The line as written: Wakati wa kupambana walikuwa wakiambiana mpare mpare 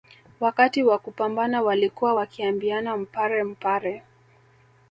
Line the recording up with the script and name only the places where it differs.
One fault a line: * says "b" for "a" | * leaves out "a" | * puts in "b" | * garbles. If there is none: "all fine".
all fine